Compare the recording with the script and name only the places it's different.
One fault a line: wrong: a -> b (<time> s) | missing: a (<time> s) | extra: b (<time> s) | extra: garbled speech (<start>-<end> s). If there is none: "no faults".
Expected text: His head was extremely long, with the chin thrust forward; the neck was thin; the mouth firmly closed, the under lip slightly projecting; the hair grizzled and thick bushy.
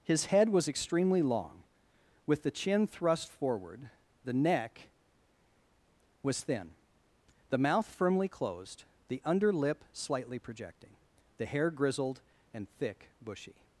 no faults